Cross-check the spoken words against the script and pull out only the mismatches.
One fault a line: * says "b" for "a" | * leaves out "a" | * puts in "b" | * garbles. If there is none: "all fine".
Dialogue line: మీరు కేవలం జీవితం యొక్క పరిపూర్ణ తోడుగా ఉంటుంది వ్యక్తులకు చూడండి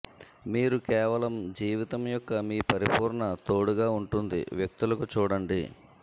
* puts in "మీ"